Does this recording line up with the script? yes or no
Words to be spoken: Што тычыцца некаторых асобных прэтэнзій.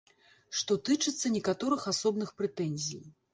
yes